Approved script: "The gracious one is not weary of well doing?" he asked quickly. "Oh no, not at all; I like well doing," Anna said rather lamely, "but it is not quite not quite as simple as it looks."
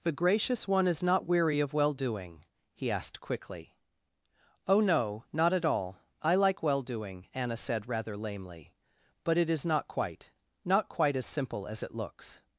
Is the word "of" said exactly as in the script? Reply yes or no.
yes